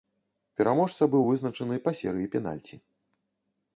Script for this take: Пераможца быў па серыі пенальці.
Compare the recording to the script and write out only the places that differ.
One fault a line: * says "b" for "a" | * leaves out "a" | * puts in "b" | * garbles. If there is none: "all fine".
* puts in "вызначаны"